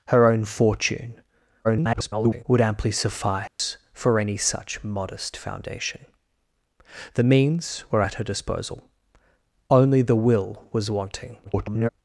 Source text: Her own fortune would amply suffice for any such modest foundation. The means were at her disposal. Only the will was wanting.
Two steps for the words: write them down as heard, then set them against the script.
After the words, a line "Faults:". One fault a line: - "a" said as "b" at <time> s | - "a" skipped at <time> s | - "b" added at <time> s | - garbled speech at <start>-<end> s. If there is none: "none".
Her own fortune [garbled] would amply suffice for any such modest foundation. The means were at her disposal. Only the will was wanting. [garbled]
Faults:
- garbled speech at 1.6-2.4 s
- garbled speech at 11.4-11.9 s